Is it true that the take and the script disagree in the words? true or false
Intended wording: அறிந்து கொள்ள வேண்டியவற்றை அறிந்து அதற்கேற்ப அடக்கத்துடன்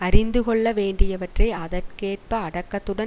true